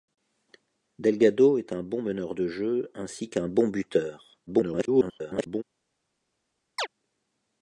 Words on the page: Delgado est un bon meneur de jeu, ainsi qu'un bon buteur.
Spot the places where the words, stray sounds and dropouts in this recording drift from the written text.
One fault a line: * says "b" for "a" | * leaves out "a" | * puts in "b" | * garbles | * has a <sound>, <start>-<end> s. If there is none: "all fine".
* garbles
* has a chirp, 6.8-6.9 s